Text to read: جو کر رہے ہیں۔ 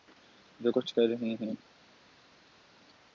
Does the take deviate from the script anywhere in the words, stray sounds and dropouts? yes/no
yes